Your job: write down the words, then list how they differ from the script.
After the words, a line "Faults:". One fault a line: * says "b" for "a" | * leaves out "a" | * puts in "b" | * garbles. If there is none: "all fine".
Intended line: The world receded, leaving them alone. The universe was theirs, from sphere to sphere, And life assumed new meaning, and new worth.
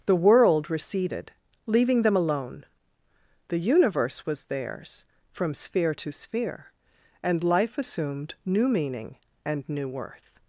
The world receded, leaving them alone. The universe was theirs, from sphere to sphere, And life assumed new meaning, and new worth.
Faults:
all fine